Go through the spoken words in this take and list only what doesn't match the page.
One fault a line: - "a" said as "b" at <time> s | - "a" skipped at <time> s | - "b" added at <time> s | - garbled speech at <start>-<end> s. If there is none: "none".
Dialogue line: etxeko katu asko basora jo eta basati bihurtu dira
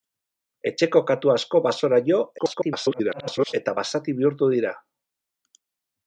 - garbled speech at 2.4-3.5 s